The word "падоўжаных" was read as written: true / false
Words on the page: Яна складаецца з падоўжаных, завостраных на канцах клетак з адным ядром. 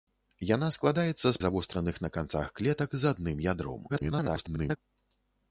false